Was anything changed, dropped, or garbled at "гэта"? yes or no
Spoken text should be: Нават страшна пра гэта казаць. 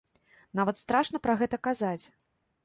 no